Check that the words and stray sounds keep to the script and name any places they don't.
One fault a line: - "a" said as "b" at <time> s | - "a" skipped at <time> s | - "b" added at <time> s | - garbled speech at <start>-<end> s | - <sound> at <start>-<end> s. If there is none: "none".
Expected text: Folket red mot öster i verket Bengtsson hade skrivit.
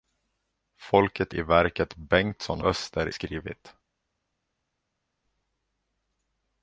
- "red mot öster" skipped at 1.4 s
- "hade" said as "öster" at 2.6 s